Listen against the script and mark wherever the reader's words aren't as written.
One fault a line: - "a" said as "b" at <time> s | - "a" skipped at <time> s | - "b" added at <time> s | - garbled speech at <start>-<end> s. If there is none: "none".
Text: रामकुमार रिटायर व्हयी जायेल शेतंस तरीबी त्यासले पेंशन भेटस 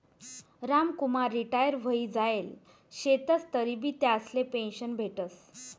none